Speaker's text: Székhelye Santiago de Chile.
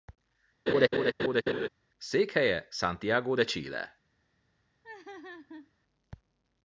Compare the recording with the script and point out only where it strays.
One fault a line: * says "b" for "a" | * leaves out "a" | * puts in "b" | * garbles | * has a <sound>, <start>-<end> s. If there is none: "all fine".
* has a laugh, 0.7-1.7 s
* has a laugh, 4.8-5.7 s